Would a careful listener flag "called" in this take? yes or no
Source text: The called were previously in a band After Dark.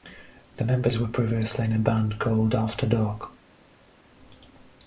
yes